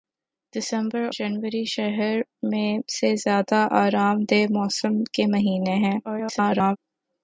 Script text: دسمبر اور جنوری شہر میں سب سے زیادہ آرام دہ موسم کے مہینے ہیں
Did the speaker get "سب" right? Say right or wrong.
wrong